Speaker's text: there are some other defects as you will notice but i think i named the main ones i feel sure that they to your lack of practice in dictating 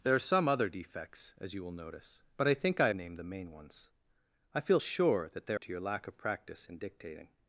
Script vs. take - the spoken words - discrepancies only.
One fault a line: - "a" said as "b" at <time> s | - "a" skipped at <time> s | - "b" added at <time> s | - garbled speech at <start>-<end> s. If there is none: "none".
none